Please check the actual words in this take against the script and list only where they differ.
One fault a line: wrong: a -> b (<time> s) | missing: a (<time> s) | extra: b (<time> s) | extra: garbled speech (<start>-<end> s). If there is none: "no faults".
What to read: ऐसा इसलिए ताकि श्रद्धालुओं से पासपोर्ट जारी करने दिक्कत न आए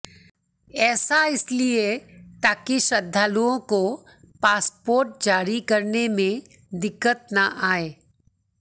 wrong: से -> को (3.7 s)
extra: में (6.1 s)